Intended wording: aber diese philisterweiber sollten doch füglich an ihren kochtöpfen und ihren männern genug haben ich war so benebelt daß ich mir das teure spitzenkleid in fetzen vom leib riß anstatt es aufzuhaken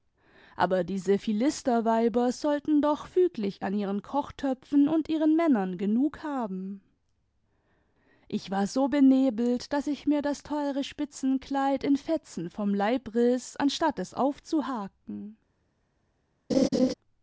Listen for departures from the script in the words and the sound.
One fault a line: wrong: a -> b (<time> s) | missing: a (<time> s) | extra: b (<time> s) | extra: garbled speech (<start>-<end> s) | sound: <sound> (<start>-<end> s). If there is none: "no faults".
sound: laugh (16.5-16.9 s)